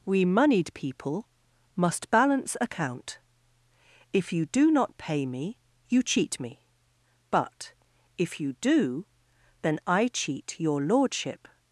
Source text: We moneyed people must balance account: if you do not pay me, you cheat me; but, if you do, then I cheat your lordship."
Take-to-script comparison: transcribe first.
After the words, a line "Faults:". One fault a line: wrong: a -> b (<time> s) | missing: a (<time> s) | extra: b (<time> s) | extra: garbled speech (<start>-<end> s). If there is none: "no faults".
We moneyed people must balance account: if you do not pay me, you cheat me; but, if you do, then I cheat your lordship."
Faults:
no faults